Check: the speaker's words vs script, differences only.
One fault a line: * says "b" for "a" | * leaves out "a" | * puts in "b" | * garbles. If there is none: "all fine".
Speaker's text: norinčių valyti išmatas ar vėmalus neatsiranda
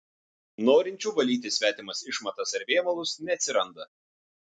* puts in "svetimas"